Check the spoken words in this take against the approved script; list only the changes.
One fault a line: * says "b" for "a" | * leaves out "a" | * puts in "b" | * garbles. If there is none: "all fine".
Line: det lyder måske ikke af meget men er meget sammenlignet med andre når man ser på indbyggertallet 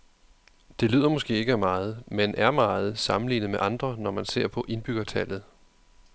all fine